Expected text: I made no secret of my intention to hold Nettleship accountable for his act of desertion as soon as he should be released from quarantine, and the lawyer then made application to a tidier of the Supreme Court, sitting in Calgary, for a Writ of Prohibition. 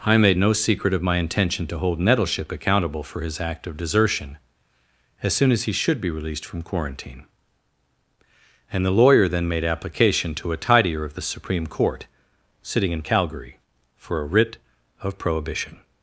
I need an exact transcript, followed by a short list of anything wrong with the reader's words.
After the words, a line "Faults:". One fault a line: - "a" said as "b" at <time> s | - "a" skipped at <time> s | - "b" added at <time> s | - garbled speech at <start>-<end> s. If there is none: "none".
I made no secret of my intention to hold Nettleship accountable for his act of desertion as soon as he should be released from quarantine, and the lawyer then made application to a tidier of the Supreme Court, sitting in Calgary, for a Writ of Prohibition.
Faults:
none